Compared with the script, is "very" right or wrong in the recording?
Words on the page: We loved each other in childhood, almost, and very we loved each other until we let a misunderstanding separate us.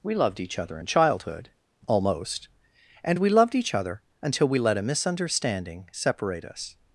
wrong